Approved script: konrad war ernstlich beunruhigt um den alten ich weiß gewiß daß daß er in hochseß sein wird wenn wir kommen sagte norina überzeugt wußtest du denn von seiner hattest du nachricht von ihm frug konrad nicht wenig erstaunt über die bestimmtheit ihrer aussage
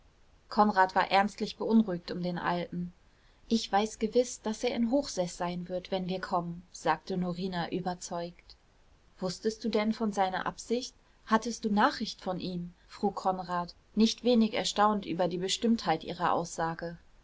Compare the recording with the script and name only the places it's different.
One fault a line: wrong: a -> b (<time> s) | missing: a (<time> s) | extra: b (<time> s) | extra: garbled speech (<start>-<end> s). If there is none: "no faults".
missing: daß (4.6 s)
extra: absicht (10.5 s)